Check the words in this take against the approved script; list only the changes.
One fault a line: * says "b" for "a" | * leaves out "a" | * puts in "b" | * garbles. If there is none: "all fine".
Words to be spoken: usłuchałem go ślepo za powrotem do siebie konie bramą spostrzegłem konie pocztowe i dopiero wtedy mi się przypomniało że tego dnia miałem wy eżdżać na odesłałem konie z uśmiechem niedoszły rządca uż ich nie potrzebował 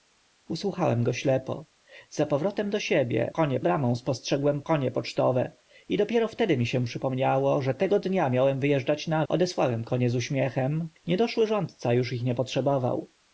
all fine